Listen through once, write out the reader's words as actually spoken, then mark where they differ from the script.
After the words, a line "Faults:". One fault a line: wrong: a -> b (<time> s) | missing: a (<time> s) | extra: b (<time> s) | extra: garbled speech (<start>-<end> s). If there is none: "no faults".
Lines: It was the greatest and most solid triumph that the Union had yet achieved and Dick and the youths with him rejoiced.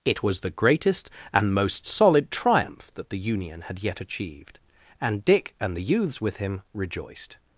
It was the greatest and most solid triumph that the Union had yet achieved and Dick and the youths with him rejoiced.
Faults:
no faults